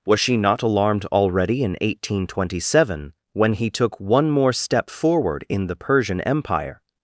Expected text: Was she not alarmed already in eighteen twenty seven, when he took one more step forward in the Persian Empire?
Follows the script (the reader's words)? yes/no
yes